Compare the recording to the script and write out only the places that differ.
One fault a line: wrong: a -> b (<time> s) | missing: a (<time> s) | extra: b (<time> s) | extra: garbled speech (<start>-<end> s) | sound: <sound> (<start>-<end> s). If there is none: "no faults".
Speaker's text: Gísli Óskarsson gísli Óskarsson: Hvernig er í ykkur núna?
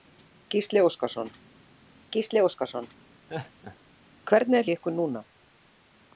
sound: laugh (3.3-3.8 s)